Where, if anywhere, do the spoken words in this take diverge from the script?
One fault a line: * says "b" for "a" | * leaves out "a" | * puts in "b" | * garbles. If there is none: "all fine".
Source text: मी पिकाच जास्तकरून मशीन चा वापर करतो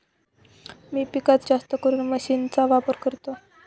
all fine